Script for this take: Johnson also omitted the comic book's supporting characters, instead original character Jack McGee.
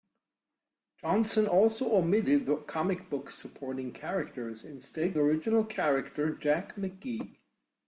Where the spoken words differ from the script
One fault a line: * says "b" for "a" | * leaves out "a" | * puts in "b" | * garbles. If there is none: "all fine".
all fine